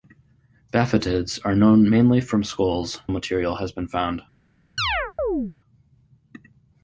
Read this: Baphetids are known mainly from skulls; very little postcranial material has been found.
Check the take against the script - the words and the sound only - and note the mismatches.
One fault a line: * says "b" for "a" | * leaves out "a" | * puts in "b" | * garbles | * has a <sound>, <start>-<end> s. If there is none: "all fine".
* leaves out "very little postcranial"
* has a chirp, 4.8-5.5 s